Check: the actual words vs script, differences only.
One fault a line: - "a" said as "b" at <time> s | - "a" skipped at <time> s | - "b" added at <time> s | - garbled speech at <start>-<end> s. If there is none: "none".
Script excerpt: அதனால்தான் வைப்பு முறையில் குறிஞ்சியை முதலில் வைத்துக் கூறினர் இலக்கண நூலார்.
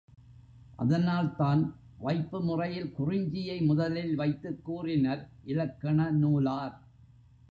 none